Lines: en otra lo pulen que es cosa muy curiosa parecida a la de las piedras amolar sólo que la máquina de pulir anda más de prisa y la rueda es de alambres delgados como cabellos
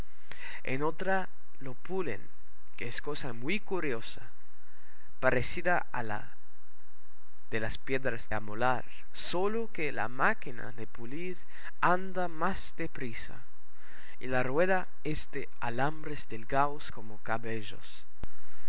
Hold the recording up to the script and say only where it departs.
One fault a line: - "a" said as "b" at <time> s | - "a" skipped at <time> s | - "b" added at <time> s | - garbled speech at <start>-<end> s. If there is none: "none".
none